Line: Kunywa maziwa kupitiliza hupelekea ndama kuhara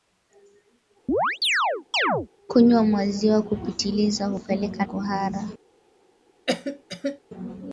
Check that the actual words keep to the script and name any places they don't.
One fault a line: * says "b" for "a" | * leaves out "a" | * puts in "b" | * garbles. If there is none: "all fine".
* leaves out "ndama"